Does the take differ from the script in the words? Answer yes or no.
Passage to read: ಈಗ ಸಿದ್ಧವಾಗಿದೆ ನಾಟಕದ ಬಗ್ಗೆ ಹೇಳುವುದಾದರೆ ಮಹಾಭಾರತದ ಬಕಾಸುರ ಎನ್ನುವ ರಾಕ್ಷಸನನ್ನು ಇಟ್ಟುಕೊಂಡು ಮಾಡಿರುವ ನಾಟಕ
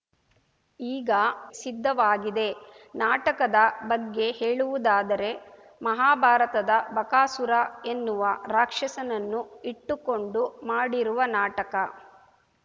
no